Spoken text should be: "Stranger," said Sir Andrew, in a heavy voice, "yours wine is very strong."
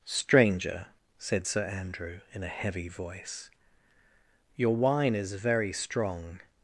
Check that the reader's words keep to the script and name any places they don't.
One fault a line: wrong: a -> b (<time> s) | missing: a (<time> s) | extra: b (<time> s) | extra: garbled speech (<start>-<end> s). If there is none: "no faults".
wrong: yours -> your (4.6 s)